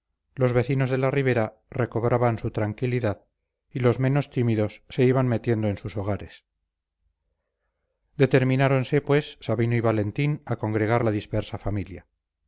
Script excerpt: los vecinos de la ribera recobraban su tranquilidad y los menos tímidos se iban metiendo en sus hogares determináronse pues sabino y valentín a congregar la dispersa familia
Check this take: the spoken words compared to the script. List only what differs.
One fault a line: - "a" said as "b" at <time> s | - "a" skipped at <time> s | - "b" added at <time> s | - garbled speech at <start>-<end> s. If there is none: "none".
none